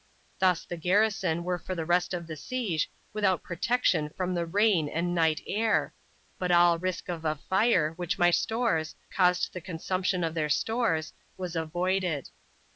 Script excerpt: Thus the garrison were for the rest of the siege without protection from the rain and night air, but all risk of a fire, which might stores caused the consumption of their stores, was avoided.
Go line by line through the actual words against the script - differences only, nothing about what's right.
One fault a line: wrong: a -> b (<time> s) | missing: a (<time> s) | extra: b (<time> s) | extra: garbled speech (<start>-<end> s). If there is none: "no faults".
no faults